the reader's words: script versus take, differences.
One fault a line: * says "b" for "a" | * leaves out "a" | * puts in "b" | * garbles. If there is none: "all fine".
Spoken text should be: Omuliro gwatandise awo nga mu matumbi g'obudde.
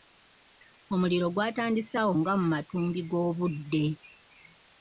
all fine